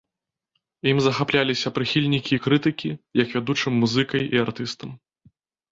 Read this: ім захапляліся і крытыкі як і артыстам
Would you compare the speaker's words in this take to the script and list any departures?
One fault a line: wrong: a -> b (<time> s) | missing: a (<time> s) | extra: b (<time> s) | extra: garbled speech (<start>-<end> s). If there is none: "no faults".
extra: прыхільнікі (1.8 s)
extra: вядучым музыкай (3.4 s)